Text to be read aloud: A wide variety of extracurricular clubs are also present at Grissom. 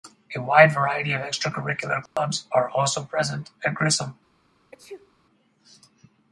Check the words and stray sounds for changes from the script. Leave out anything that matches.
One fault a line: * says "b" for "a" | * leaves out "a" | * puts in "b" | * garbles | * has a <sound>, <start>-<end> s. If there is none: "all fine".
* has a dropout, 2.1-2.2 s
* has a sneeze, 4.7-5.1 s